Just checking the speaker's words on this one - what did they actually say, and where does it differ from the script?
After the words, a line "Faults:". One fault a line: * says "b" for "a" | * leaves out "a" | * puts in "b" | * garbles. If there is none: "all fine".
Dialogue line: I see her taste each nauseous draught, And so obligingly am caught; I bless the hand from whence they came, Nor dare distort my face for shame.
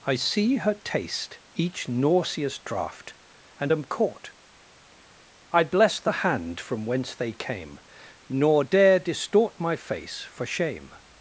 I see her taste each nauseous draught, And am caught; I bless the hand from whence they came, Nor dare distort my face for shame.
Faults:
* leaves out "so obligingly"